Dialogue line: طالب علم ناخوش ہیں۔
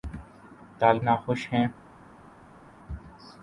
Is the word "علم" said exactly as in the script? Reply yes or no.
no